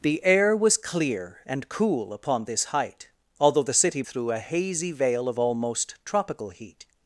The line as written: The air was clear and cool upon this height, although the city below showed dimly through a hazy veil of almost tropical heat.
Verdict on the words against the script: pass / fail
fail